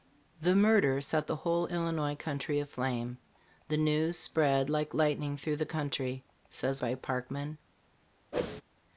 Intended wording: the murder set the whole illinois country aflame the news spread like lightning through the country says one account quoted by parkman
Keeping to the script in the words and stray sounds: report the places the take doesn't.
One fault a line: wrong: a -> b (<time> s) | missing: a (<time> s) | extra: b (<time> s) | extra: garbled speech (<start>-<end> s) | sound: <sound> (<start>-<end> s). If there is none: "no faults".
missing: one account quoted (6.8 s)
sound: whoosh (8.3-8.6 s)